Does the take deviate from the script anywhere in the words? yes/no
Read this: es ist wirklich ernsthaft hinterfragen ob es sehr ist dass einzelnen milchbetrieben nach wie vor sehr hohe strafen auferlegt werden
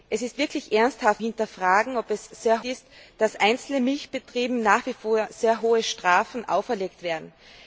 no